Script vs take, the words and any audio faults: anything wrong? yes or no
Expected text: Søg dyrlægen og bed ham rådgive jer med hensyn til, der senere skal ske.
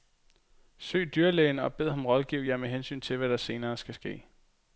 yes